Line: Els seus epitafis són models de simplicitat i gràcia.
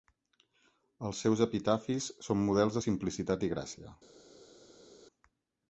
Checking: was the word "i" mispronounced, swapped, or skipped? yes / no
no